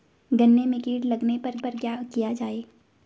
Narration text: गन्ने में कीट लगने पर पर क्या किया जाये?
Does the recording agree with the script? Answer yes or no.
yes